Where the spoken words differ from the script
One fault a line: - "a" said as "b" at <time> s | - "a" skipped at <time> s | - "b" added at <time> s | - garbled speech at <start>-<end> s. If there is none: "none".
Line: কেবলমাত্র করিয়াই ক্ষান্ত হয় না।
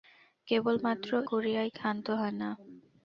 none